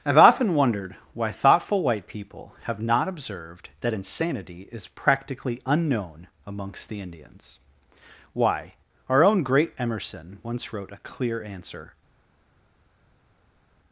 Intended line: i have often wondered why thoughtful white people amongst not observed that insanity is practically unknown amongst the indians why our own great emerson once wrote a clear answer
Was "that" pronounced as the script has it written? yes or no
yes